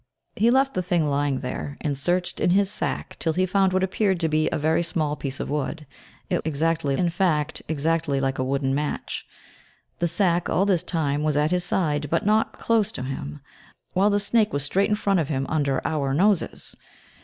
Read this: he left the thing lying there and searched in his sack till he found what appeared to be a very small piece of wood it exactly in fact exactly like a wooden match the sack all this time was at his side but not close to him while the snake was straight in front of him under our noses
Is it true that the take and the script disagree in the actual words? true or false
false